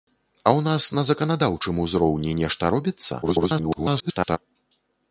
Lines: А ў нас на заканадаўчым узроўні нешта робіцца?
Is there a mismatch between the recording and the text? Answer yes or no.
yes